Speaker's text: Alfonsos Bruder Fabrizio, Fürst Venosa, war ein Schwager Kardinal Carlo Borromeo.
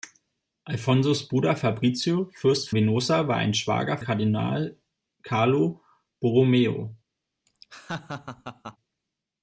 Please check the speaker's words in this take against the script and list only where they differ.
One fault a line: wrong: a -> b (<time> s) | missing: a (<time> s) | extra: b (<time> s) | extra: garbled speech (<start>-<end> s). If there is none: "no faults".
no faults